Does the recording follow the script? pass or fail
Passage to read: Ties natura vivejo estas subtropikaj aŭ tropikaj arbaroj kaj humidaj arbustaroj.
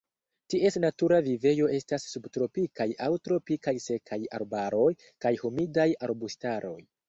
fail